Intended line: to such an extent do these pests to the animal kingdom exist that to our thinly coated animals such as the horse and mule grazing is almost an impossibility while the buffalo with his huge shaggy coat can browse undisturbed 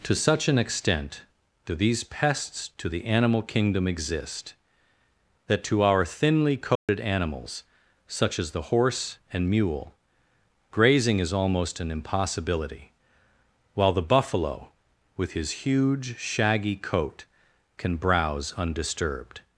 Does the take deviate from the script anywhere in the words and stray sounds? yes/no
yes